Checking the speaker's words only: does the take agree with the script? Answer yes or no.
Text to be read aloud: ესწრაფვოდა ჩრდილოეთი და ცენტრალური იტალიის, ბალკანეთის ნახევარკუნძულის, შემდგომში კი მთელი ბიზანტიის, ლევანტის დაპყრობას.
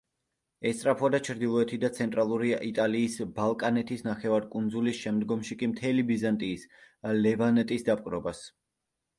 yes